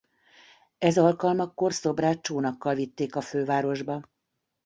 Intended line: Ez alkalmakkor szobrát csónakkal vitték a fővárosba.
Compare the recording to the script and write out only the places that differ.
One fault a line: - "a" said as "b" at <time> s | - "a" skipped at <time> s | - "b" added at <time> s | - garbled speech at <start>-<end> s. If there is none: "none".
none